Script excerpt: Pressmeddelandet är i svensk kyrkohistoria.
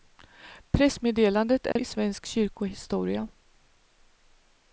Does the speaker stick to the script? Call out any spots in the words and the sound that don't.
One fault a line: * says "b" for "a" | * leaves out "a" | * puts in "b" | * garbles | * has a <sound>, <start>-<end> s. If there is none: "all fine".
* has a dropout, 1.7-1.8 s